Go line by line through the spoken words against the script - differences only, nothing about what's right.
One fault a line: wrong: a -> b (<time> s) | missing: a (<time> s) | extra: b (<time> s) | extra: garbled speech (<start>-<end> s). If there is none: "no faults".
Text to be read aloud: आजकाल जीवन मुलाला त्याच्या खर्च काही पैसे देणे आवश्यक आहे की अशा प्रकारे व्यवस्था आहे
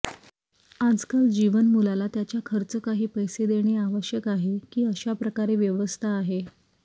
no faults